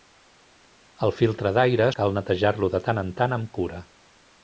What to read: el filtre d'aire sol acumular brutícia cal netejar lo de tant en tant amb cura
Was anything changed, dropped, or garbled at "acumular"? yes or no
yes